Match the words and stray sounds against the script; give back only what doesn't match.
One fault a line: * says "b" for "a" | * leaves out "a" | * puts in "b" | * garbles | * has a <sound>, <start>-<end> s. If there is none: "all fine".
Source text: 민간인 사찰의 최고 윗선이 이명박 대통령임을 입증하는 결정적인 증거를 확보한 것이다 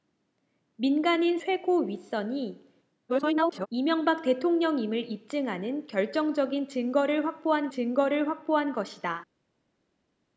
* leaves out "사찰의"
* garbles
* puts in "증거를 확보한"